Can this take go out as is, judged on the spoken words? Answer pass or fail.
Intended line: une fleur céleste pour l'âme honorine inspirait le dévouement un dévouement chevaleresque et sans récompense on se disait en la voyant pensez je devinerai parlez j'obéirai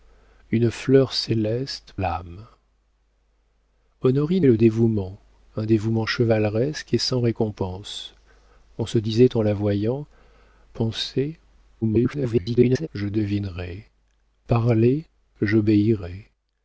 fail